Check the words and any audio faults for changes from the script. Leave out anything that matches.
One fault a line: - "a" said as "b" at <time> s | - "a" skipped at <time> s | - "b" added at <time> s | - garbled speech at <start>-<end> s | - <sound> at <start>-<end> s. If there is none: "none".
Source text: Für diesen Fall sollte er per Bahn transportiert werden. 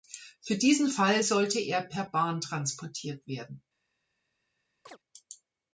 - chirp at 4.9-5.0 s